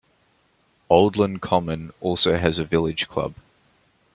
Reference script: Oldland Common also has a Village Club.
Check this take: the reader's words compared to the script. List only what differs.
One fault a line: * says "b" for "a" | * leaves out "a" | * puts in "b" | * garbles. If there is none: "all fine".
all fine